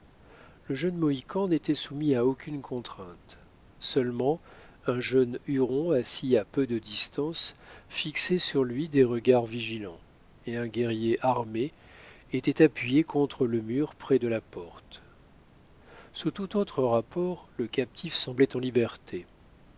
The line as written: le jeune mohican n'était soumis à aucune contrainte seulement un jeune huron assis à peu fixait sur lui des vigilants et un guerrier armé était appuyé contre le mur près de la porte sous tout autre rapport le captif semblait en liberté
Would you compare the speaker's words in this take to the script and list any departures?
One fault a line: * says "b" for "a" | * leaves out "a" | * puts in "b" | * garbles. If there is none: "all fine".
* puts in "de distance"
* puts in "regards"